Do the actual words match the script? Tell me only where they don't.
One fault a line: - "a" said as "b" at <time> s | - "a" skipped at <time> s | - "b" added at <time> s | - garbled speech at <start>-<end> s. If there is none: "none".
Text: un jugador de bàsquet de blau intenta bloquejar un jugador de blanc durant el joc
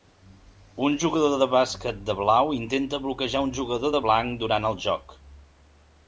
none